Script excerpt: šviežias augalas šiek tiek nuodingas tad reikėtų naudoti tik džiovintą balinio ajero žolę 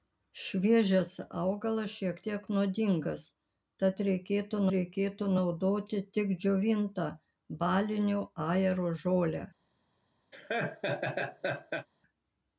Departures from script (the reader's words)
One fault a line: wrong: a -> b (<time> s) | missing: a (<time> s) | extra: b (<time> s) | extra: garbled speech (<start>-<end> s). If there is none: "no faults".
extra: reikėtų (4.8 s)